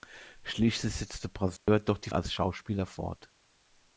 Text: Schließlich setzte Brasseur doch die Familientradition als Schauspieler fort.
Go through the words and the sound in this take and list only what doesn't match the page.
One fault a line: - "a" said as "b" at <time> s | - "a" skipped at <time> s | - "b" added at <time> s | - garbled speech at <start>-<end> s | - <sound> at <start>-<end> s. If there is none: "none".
- dropout at 1.6-1.7 s
- "Familientradition" skipped at 2.1 s